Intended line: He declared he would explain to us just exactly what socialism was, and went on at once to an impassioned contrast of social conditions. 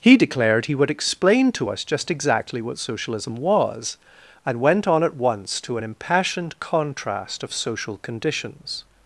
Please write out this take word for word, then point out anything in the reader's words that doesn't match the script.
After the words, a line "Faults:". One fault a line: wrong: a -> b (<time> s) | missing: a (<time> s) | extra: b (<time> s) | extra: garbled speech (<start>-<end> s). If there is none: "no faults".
He declared he would explain to us just exactly what socialism was, and went on at once to an impassioned contrast of social conditions.
Faults:
no faults